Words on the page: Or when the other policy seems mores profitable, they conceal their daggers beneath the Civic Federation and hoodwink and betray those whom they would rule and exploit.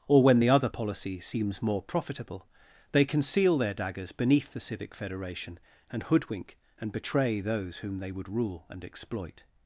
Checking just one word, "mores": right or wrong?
wrong